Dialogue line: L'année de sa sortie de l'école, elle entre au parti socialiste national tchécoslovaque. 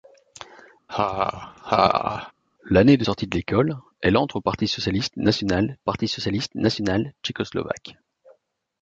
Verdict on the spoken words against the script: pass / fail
fail